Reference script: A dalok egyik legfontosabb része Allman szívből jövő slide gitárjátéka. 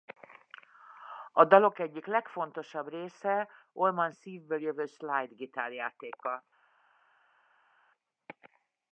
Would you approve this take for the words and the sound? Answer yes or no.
yes